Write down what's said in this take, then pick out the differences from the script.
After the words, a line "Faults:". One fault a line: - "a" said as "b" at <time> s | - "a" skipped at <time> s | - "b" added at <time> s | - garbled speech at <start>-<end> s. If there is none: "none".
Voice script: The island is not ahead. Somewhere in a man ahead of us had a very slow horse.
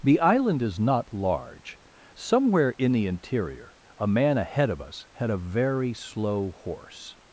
The island is not large. Somewhere in the interior a man ahead of us had a very slow horse.
Faults:
- "ahead" said as "large" at 1.1 s
- "the interior" added at 2.9 s